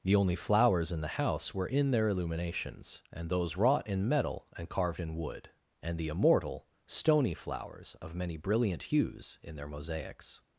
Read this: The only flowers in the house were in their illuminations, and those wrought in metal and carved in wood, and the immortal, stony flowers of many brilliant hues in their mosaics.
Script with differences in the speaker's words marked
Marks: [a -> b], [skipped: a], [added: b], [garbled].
The only flowers in the house were in their illuminations, and those wrought in metal and carved in wood, and the immortal, stony flowers of many brilliant hues in their mosaics.